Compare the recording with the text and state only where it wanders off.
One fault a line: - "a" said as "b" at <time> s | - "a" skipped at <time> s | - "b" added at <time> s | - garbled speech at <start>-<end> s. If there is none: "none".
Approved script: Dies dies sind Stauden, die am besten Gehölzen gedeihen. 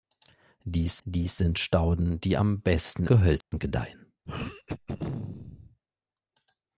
none